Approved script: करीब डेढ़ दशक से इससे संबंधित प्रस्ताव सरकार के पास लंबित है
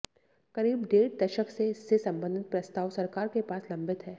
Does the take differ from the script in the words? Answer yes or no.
no